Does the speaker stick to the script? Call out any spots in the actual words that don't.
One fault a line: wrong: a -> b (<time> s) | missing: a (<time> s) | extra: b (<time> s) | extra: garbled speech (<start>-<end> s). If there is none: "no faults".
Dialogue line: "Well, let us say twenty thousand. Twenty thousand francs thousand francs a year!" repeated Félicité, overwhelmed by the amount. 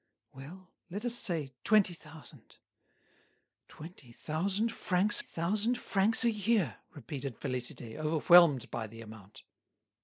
no faults